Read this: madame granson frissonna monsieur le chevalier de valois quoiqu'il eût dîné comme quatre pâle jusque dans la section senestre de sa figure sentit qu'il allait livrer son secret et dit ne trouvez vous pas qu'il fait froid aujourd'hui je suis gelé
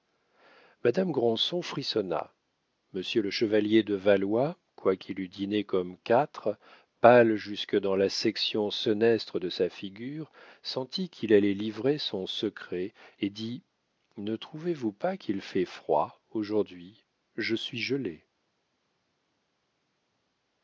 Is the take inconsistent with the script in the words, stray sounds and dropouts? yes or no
no